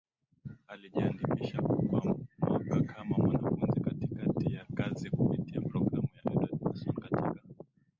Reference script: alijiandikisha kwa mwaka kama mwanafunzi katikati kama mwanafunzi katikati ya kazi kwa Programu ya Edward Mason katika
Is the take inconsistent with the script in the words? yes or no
yes